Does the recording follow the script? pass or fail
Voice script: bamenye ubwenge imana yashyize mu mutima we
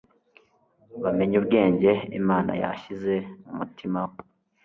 pass